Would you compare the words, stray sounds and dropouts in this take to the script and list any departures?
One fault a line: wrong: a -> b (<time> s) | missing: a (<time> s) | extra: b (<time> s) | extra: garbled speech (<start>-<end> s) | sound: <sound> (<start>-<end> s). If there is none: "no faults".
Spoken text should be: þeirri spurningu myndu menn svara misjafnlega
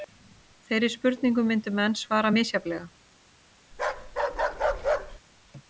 sound: bark (3.7-5.2 s)